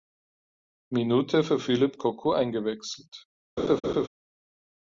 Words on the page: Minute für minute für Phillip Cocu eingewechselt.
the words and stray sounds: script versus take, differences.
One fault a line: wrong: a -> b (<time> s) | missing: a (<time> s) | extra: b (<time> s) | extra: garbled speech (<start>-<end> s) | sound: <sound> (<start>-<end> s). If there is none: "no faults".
missing: minute für (1.6 s)
sound: laugh (3.6-4.1 s)